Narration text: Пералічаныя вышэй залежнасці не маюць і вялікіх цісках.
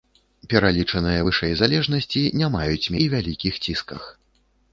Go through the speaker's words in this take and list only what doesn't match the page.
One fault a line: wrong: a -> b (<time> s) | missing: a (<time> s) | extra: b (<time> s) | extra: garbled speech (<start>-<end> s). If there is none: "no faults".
no faults